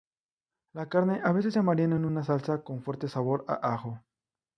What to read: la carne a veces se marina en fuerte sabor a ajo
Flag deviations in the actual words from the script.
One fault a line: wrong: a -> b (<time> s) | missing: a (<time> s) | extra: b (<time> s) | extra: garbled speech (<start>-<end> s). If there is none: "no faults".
extra: una salsa con (2.0 s)